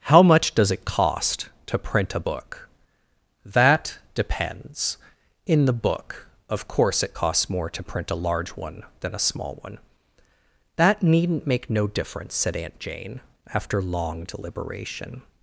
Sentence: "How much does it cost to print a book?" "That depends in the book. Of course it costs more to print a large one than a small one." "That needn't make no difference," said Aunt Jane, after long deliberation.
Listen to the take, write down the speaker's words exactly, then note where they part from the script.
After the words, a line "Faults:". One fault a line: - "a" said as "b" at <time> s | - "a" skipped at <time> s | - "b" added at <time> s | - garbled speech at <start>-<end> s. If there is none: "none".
"How much does it cost to print a book?" "That depends in the book. Of course it costs more to print a large one than a small one." "That needn't make no difference," said Aunt Jane, after long deliberation.
Faults:
none